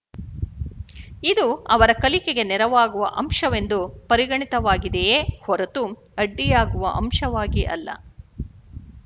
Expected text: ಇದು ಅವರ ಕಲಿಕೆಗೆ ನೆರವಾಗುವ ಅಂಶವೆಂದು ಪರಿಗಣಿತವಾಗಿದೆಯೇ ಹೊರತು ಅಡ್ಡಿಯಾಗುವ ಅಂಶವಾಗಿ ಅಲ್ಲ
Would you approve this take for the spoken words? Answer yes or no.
yes